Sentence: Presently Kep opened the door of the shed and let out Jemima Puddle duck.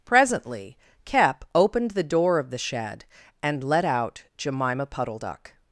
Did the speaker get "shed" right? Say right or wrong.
right